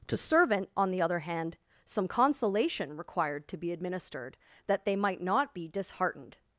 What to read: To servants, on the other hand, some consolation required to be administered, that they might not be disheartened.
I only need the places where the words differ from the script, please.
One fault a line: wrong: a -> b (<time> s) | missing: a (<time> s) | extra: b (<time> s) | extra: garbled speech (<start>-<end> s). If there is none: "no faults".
wrong: servants -> servant (0.2 s)